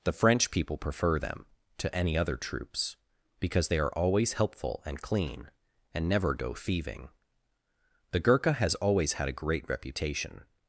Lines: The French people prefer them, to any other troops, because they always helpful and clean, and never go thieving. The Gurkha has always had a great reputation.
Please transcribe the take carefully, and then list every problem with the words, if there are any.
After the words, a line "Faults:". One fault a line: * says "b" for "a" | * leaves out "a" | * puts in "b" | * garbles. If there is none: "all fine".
The French people prefer them, to any other troops, because they are always helpful and clean, and never go thieving. The Gurkha has always had a great reputation.
Faults:
* puts in "are"